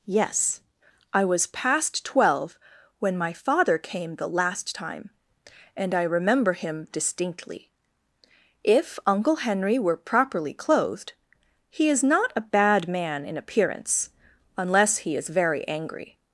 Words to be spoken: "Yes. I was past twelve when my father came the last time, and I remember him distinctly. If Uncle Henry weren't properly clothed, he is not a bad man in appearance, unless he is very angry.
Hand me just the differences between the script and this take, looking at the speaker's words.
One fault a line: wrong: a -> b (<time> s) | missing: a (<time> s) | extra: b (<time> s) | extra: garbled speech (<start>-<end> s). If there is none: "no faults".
wrong: weren't -> were (9.8 s)